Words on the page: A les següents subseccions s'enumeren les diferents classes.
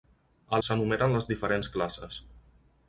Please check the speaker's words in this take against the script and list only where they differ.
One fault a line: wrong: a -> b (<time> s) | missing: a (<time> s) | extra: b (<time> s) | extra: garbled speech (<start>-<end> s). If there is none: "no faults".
missing: les següents subseccions (0.6 s)